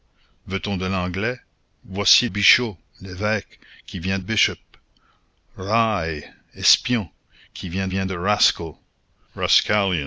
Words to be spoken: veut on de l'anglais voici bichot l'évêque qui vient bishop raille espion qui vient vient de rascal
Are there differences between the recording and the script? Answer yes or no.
no